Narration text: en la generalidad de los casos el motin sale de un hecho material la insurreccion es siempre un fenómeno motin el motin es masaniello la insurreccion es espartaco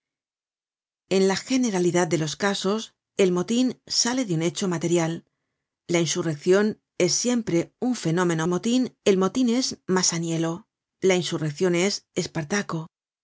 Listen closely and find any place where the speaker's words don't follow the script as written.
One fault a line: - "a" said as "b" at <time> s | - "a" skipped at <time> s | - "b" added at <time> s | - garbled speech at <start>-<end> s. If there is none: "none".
none